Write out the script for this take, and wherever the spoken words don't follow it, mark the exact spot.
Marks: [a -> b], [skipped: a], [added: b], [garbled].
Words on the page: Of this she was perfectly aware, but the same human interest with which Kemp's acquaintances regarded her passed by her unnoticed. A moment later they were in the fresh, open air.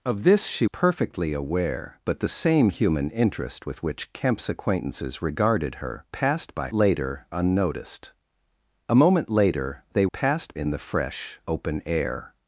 Of this she [skipped: was] perfectly aware, but the same human interest with which Kemp's acquaintances regarded her passed by [her -> later] unnoticed. A moment later they [were -> passed] in the fresh, open air.